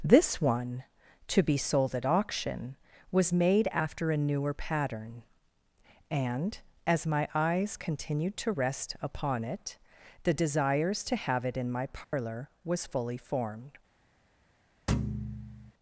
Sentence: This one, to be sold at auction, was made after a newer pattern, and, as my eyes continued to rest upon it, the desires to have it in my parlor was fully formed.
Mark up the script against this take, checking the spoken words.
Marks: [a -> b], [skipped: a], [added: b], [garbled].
This one, to be sold at auction, was made after a newer pattern, and, as my eyes continued to rest upon it, the desires to have it in my parlor was fully formed.